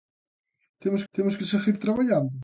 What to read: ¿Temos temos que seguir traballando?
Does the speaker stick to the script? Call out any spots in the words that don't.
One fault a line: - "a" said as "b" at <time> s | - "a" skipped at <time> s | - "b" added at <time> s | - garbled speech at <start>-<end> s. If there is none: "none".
none